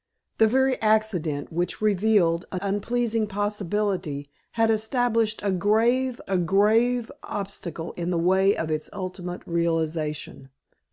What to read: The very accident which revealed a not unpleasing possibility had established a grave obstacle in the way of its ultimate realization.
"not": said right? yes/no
no